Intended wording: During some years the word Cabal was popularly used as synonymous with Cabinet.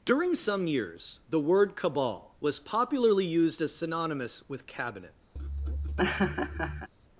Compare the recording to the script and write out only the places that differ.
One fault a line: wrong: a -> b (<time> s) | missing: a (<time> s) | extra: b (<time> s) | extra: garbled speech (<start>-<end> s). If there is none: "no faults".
no faults